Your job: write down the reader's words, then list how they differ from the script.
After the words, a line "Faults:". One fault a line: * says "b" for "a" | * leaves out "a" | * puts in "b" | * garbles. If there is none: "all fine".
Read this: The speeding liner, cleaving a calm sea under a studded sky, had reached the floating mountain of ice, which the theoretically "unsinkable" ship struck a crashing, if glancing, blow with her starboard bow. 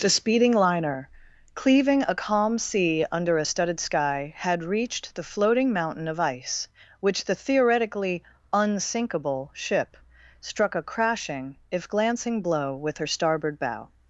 The speeding liner, cleaving a calm sea under a studded sky, had reached the floating mountain of ice, which the theoretically "unsinkable" ship struck a crashing, if glancing, blow with her starboard bow.
Faults:
all fine